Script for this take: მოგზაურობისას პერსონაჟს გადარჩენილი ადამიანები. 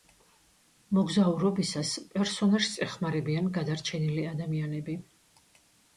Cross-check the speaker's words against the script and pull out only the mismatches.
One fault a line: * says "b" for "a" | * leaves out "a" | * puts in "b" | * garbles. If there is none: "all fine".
* puts in "ეხმარებიან"